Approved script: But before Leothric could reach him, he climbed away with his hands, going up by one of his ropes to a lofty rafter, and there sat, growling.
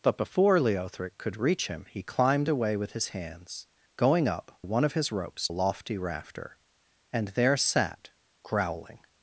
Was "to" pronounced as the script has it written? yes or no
no